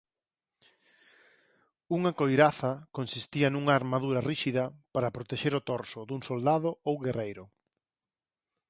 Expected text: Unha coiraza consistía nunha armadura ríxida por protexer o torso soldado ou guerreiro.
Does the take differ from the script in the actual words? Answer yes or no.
yes